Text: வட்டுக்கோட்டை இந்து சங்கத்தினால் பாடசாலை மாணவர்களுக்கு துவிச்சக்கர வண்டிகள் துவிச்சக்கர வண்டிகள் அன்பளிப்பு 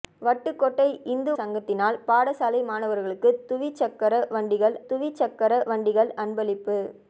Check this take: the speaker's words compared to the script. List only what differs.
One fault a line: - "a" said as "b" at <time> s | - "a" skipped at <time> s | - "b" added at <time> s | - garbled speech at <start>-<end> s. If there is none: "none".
none